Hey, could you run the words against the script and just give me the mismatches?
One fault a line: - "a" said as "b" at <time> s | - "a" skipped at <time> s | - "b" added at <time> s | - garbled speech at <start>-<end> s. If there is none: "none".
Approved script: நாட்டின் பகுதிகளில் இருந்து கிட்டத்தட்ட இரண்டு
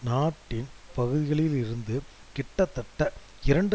none